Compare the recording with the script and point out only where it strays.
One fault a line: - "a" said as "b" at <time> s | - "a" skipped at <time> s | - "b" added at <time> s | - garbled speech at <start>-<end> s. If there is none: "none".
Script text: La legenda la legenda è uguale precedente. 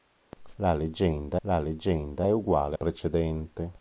none